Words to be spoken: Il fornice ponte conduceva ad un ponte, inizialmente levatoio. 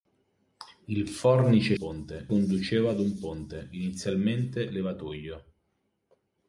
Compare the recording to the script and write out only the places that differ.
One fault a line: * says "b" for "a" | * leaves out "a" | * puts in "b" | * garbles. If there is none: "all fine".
all fine